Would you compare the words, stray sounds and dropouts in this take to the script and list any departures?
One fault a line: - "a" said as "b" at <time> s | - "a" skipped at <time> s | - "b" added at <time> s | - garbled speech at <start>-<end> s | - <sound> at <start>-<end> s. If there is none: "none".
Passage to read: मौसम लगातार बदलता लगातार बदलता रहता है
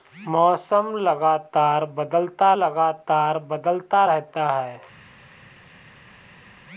none